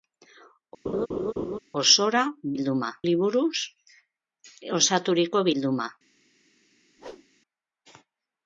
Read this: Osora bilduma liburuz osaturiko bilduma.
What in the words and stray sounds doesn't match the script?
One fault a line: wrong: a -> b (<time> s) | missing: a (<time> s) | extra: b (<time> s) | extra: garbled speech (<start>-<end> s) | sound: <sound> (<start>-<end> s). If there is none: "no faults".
sound: laugh (0.9-1.6 s)
sound: whoosh (7.0-7.3 s)